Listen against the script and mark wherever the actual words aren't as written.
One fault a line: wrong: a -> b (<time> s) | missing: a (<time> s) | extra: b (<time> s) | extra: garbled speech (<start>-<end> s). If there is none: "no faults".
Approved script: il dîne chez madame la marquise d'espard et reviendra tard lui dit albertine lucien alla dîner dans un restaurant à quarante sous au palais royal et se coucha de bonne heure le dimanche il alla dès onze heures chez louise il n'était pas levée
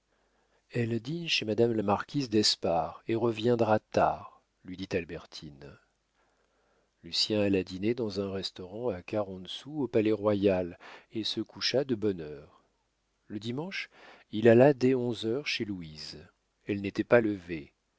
wrong: il -> elle (0.7 s)
wrong: il -> elle (16.7 s)